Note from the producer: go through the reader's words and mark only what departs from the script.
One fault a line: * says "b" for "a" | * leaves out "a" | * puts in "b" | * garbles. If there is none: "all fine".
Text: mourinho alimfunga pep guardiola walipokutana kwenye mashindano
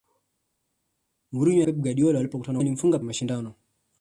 * leaves out "alimfunga"
* says "alimfunga" for "kwenye"